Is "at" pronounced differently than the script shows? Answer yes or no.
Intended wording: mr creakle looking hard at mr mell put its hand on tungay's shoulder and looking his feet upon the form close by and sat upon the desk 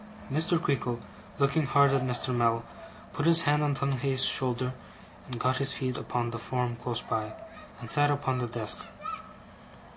no